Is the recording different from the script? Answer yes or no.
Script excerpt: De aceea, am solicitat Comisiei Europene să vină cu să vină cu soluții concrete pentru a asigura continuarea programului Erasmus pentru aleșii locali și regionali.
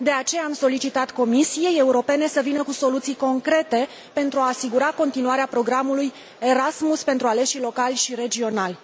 yes